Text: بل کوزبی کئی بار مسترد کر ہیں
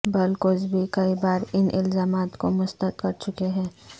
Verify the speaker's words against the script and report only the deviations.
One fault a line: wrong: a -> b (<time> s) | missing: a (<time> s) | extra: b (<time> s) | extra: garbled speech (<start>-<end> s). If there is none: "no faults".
extra: ان الزامات کو (1.5 s)
extra: چکے (3.2 s)